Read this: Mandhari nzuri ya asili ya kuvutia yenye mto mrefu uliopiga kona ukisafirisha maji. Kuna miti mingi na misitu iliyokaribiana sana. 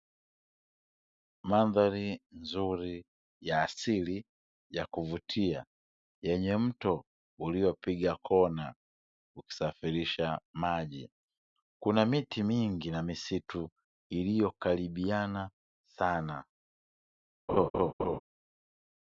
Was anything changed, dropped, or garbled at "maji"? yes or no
no